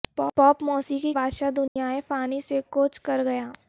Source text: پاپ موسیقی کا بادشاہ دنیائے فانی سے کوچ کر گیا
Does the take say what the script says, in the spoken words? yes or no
no